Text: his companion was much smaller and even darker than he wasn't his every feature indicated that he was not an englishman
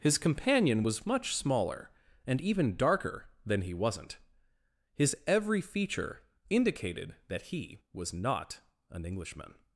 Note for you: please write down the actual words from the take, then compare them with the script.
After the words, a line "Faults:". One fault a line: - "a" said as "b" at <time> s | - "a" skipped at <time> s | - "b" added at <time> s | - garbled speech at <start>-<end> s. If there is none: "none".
his companion was much smaller and even darker than he wasn't his every feature indicated that he was not an englishman
Faults:
none